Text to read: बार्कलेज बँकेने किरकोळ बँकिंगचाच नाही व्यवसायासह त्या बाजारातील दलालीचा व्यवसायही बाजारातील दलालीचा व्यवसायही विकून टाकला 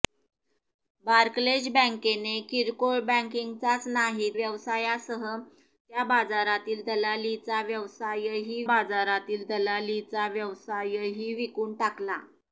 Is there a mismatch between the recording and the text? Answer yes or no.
no